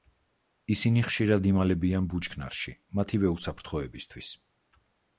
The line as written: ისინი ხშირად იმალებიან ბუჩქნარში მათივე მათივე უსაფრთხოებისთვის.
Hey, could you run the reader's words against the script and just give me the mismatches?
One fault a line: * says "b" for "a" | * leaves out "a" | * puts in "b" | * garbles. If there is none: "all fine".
* leaves out "მათივე"